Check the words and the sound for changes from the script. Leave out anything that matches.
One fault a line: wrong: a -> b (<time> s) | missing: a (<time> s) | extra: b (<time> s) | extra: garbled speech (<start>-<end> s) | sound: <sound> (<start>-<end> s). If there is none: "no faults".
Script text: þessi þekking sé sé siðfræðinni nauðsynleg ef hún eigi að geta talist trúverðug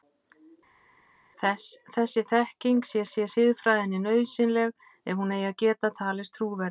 no faults